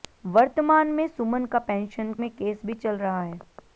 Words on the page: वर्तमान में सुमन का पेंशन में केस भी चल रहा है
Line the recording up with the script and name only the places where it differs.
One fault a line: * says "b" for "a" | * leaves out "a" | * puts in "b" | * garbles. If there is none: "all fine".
all fine